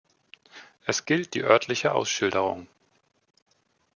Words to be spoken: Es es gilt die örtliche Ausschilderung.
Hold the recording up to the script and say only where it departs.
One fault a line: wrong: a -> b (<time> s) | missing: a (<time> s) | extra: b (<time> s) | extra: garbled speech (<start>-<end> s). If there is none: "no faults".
missing: es (1.1 s)